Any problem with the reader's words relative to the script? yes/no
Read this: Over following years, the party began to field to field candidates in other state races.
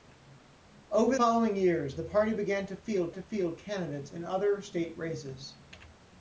no